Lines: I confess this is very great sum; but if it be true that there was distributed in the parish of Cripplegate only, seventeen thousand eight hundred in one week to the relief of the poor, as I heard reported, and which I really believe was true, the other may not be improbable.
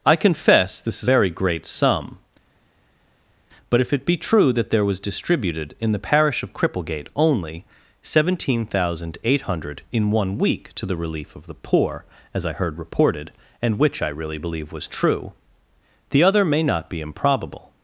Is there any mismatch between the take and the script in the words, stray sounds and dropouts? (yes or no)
no